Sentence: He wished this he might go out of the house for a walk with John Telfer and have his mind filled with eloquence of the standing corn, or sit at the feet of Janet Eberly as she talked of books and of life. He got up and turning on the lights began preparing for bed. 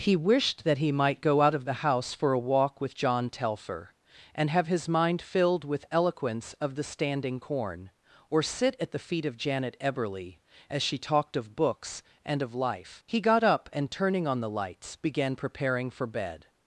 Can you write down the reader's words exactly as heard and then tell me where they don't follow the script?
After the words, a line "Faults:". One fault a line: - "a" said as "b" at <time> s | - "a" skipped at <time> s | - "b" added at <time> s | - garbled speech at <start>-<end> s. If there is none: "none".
He wished that he might go out of the house for a walk with John Telfer and have his mind filled with eloquence of the standing corn, or sit at the feet of Janet Eberly as she talked of books and of life. He got up and turning on the lights began preparing for bed.
Faults:
- "this" said as "that" at 0.6 s